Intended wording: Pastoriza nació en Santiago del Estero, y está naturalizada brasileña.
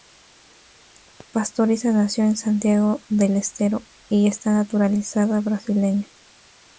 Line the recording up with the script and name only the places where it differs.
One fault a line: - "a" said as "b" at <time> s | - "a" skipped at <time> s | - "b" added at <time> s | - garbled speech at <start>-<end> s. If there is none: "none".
none